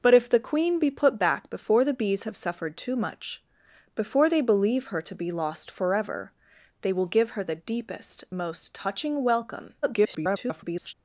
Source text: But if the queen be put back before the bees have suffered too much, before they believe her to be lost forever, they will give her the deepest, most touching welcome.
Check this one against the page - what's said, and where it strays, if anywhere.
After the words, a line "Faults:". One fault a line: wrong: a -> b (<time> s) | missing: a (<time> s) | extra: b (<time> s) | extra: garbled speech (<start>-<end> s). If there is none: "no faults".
But if the queen be put back before the bees have suffered too much, before they believe her to be lost forever, they will give her the deepest, most touching welcome. [garbled]
Faults:
extra: garbled speech (9.8-10.9 s)